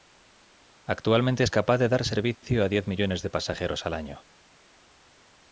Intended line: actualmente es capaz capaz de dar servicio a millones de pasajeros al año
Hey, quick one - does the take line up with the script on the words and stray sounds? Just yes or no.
no